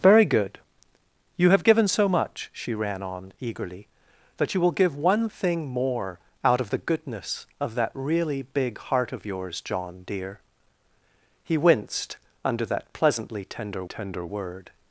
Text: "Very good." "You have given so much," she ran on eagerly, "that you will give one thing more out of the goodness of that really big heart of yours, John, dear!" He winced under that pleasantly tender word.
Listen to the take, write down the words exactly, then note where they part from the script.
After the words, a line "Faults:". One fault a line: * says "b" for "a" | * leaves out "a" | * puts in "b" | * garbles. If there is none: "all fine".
"Very good." "You have given so much," she ran on eagerly, "that you will give one thing more out of the goodness of that really big heart of yours, John, dear!" He winced under that pleasantly tender tender word.
Faults:
* puts in "tender"